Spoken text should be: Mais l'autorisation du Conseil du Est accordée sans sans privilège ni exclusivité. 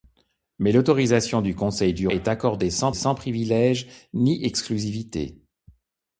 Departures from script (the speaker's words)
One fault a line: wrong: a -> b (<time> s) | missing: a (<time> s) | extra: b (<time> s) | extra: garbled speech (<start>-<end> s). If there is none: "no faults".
no faults